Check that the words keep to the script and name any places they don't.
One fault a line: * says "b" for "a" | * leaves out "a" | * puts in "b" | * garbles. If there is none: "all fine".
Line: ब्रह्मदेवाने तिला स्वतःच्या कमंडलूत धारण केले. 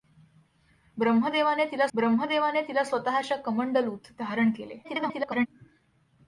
* puts in "ब्रह्मदेवाने तिला"
* garbles